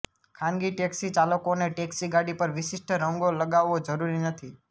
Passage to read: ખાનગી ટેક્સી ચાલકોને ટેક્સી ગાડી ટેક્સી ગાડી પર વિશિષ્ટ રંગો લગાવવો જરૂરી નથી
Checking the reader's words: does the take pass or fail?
fail